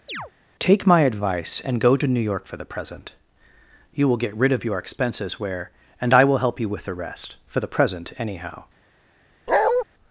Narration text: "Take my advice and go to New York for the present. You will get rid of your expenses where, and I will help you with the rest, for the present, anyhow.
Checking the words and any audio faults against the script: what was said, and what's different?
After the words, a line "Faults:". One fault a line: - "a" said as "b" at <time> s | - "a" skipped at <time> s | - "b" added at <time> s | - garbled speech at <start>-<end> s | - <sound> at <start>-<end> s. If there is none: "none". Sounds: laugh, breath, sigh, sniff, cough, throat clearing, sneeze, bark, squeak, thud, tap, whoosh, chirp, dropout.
"Take my advice and go to New York for the present. You will get rid of your expenses where, and I will help you with the rest, for the present, anyhow.
Faults:
- chirp at 0.1-0.3 s
- bark at 9.5-9.8 s